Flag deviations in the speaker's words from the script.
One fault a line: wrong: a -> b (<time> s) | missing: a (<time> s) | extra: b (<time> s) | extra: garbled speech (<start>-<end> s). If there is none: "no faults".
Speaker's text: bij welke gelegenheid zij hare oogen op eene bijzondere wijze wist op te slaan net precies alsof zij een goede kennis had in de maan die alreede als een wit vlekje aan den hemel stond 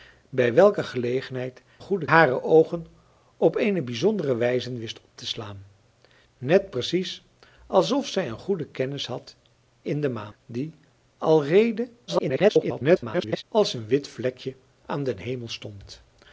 wrong: zij -> goede (1.8 s)
extra: garbled speech (12.1-13.4 s)